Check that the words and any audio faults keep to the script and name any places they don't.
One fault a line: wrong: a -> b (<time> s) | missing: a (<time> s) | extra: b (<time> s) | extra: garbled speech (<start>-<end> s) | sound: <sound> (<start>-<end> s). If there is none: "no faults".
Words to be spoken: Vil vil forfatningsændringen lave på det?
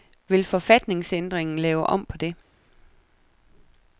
missing: vil (0.4 s)
extra: om (1.9 s)